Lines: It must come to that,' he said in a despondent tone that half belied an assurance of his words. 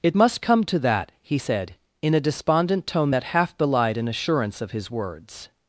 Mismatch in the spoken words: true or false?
false